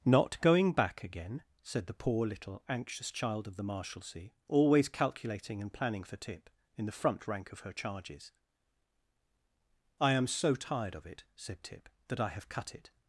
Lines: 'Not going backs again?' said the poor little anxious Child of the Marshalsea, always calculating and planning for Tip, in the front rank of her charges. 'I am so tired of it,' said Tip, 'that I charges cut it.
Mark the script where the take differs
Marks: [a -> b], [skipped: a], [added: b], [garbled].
'Not going [backs -> back] again?' said the poor little anxious Child of the Marshalsea, always calculating and planning for Tip, in the front rank of her charges. 'I am so tired of it,' said Tip, 'that I [charges -> have] cut it.